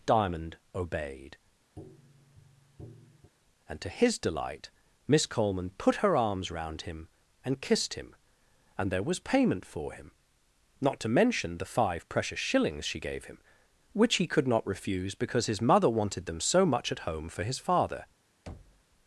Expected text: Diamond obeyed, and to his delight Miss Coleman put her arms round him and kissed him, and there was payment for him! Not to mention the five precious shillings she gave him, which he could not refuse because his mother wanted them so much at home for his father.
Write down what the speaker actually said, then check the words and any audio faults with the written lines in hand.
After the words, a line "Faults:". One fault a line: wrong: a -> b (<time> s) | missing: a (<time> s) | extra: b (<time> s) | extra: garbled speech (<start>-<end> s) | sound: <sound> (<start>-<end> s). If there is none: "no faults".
Diamond obeyed, and to his delight Miss Coleman put her arms round him and kissed him, and there was payment for him! Not to mention the five precious shillings she gave him, which he could not refuse because his mother wanted them so much at home for his father.
Faults:
sound: tap (1.8-3.3 s)
sound: thud (18.5-18.8 s)